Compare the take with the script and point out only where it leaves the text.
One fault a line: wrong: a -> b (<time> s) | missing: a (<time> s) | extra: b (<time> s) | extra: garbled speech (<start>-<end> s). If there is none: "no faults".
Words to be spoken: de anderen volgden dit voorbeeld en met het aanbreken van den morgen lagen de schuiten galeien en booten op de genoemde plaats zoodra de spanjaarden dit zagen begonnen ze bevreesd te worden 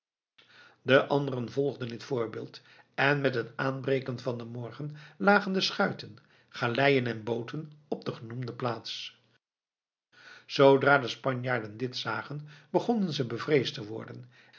no faults